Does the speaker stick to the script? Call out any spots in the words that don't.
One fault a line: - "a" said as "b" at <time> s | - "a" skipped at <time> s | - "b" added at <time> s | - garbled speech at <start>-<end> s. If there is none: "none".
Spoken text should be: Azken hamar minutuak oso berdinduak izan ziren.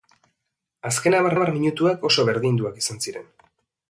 - "hamar" added at 1.3 s